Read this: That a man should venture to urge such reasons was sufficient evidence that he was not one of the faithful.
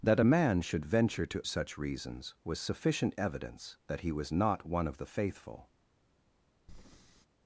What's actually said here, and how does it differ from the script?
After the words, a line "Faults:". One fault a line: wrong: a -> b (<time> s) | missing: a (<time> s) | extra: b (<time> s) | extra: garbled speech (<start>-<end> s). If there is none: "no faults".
That a man should venture to such reasons was sufficient evidence that he was not one of the faithful.
Faults:
missing: urge (1.4 s)